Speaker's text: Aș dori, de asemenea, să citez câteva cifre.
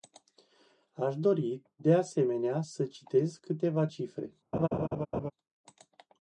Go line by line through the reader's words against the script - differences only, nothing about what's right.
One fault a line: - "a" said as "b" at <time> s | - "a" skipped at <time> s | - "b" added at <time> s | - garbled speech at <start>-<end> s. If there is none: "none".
none